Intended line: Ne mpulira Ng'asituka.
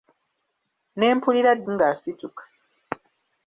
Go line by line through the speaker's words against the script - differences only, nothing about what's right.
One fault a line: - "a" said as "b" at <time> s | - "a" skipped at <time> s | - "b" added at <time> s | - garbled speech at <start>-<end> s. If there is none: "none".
none